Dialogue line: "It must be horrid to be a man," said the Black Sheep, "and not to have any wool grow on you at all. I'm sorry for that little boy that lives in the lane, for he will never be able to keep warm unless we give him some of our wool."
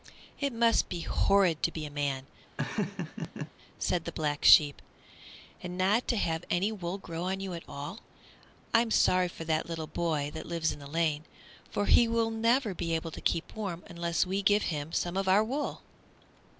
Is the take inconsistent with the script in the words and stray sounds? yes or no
yes